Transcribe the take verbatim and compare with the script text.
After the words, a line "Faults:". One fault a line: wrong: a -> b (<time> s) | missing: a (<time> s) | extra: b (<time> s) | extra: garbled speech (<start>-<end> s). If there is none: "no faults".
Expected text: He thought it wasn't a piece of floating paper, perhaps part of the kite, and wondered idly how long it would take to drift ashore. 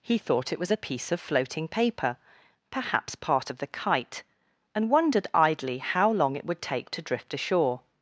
He thought it was a piece of floating paper, perhaps part of the kite, and wondered idly how long it would take to drift ashore.
Faults:
wrong: wasn't -> was (0.6 s)